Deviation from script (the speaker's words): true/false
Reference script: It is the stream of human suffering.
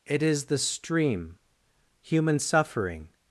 true